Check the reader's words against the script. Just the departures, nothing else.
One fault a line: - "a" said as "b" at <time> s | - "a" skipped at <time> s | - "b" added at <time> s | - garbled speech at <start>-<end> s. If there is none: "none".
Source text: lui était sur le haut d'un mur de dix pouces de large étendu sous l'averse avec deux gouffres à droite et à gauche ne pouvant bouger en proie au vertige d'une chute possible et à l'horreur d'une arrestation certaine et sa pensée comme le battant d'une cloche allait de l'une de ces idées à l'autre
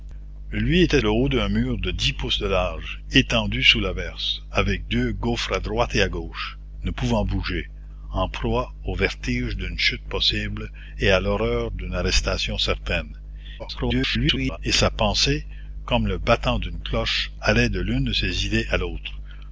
- "sur" skipped at 1.0 s
- garbled speech at 13.6-14.6 s